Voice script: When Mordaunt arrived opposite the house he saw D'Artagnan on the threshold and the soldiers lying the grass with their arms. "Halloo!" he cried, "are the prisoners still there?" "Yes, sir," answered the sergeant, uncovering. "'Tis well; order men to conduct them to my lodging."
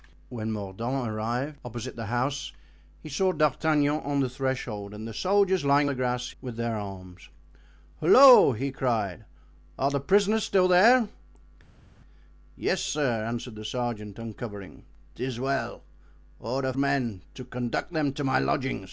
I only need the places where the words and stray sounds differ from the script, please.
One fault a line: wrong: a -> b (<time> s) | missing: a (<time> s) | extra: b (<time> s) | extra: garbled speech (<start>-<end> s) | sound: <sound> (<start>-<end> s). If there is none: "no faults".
no faults